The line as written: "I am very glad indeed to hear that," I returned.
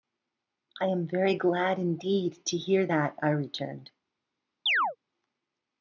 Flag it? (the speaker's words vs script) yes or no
no